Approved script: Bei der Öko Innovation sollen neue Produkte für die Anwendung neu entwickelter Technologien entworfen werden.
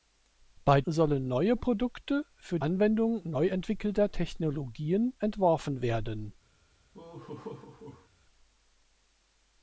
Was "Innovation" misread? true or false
true